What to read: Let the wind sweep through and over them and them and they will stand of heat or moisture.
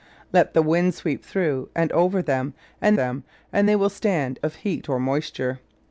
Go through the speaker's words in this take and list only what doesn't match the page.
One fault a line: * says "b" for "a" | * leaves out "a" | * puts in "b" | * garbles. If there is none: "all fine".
all fine